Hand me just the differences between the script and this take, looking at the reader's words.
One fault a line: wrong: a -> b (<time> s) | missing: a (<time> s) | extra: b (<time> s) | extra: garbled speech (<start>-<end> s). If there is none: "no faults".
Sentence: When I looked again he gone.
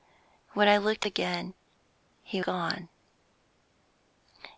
no faults